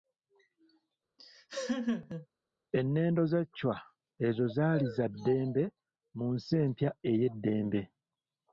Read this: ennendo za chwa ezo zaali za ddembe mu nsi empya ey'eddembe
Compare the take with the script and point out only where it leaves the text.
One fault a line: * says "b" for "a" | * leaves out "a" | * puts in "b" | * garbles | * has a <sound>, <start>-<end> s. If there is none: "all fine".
* has a laugh, 1.2-2.3 s